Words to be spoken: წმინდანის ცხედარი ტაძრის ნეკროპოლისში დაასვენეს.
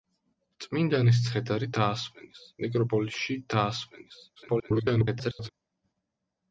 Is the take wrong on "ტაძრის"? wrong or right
wrong